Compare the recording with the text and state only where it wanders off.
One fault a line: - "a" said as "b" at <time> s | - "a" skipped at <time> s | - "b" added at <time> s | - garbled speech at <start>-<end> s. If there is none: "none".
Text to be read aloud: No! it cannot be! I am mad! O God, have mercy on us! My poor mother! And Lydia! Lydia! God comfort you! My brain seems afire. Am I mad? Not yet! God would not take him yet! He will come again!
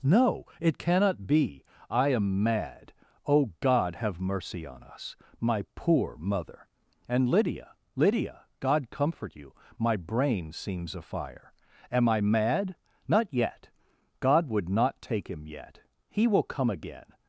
none